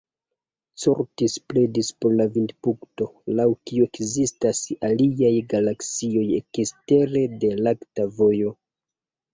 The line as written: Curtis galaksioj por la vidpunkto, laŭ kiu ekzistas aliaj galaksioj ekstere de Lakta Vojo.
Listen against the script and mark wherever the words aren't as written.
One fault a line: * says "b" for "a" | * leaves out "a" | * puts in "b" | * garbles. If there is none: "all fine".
* says "pledis" for "galaksioj"